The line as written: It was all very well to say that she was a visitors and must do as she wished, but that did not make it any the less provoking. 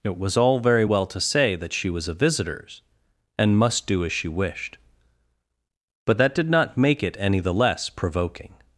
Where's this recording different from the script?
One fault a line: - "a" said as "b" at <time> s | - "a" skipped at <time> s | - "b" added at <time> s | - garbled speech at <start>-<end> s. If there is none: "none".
none